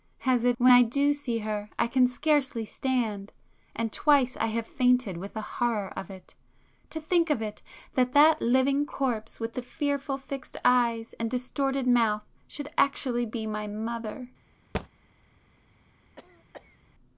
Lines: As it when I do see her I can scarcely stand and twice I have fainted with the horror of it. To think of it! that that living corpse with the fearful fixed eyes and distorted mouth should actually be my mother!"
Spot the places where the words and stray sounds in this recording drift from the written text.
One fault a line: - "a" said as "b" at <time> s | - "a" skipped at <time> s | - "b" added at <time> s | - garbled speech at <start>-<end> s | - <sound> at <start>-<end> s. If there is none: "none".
- thud at 14.7-14.9 s
- cough at 16.2-16.8 s